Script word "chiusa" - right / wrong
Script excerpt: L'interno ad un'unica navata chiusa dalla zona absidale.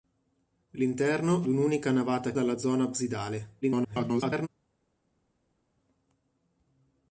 wrong